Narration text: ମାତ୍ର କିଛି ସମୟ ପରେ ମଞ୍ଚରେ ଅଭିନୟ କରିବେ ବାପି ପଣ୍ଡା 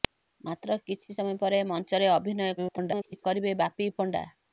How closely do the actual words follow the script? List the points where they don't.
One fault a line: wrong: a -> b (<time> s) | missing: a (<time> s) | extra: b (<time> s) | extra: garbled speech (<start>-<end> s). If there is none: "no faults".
extra: garbled speech (2.6-3.2 s)